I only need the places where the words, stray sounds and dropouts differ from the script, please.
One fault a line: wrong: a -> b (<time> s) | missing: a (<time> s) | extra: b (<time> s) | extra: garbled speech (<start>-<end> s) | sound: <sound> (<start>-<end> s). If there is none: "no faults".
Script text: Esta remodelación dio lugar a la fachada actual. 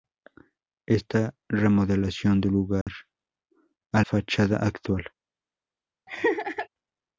sound: dropout (2.8-2.9 s)
missing: la (4.0 s)
sound: laugh (6.1-6.7 s)